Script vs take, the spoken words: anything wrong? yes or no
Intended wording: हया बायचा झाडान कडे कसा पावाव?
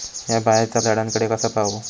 no